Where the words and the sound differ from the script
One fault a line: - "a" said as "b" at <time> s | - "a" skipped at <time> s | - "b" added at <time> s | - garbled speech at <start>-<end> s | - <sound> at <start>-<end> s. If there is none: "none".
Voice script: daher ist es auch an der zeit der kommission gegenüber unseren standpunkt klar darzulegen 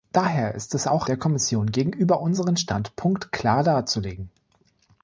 - "an der zeit" skipped at 1.1 s